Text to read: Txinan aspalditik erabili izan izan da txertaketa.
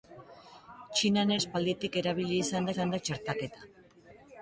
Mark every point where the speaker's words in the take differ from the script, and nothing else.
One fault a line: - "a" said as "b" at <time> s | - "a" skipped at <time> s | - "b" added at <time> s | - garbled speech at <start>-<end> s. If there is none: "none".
none